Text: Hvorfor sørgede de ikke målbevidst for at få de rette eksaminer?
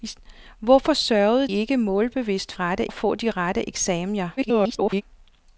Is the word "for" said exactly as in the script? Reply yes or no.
no